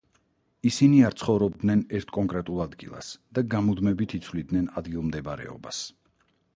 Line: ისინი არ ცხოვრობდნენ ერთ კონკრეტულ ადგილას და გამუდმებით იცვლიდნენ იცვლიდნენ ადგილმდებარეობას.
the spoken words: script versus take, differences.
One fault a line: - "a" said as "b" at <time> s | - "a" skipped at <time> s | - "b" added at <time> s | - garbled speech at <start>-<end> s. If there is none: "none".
- "იცვლიდნენ" skipped at 4.7 s